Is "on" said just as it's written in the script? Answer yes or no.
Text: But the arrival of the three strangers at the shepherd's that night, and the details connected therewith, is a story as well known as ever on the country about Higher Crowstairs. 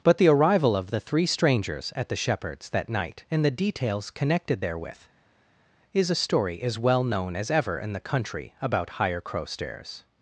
no